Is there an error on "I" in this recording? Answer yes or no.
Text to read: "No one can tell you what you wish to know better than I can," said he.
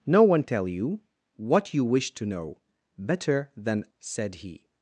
yes